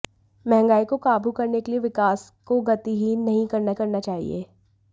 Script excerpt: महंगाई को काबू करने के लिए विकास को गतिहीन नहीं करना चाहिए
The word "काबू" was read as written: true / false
true